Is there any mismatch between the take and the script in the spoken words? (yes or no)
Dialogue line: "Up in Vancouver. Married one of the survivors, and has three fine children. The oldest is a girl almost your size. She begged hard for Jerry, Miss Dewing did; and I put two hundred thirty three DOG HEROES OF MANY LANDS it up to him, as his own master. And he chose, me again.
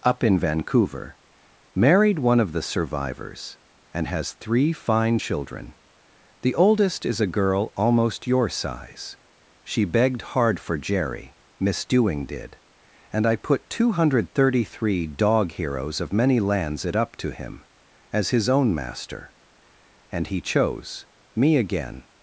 no